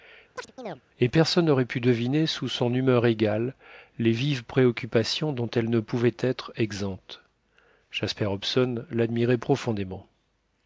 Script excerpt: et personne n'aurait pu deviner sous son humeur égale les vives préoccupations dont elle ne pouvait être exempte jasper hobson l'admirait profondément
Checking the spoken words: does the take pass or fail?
pass